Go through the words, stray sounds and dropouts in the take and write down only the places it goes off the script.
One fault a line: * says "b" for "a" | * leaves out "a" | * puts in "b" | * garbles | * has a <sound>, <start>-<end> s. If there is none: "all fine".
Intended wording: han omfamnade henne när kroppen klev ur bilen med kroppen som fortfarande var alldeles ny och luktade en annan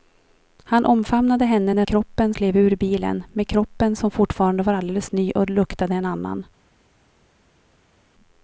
all fine